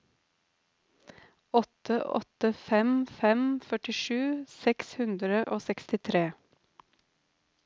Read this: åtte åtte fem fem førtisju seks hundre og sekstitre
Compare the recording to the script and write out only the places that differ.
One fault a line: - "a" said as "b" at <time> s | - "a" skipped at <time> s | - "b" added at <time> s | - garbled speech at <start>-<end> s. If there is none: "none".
none